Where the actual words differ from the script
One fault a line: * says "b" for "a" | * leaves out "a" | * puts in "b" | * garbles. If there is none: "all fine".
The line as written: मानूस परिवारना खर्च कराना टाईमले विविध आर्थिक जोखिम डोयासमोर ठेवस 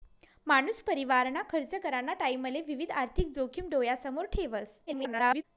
* garbles